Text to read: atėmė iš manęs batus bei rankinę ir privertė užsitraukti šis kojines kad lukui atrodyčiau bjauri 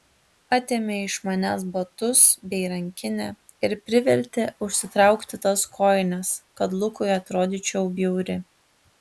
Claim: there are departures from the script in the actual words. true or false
true